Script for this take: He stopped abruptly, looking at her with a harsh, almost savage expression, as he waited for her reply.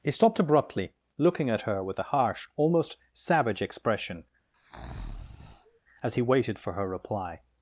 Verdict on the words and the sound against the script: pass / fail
fail